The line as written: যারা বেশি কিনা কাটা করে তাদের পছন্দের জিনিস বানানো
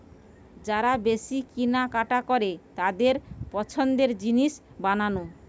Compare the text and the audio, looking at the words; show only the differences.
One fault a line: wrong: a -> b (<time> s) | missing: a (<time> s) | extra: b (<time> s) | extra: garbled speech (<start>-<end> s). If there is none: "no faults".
no faults